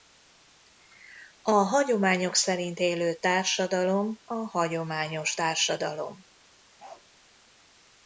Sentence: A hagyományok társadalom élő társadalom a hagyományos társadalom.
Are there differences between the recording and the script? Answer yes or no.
yes